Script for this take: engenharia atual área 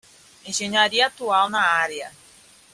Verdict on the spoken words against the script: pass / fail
fail